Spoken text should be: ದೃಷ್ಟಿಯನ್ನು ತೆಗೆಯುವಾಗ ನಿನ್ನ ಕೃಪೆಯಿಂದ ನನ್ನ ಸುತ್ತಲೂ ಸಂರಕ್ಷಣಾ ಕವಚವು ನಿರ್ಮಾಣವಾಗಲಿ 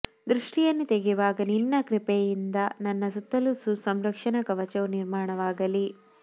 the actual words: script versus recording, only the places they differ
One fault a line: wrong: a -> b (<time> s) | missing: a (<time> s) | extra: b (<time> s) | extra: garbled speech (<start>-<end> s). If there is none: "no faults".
no faults